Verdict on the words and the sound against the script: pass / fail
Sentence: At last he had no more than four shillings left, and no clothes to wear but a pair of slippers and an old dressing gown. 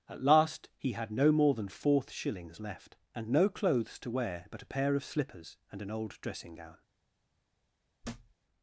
fail